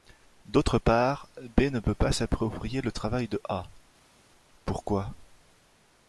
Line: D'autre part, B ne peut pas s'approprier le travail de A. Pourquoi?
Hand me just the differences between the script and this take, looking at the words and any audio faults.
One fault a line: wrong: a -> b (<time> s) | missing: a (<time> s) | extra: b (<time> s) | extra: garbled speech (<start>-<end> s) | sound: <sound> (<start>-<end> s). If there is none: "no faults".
no faults